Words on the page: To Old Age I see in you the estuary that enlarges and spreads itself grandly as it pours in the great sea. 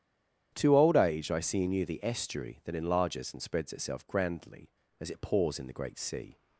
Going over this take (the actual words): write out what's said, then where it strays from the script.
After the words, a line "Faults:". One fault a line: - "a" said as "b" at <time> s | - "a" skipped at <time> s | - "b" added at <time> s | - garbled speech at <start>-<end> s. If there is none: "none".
To Old Age I see in you the estuary that enlarges and spreads itself grandly as it pours in the great sea.
Faults:
none